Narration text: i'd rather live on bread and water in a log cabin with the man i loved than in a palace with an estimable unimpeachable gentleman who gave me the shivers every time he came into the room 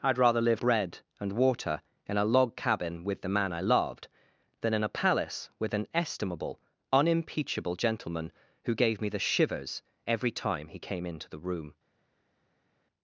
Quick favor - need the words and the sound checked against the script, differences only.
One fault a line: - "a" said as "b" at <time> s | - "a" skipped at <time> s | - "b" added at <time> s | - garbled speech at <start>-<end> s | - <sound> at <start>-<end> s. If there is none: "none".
- "on" skipped at 0.6 s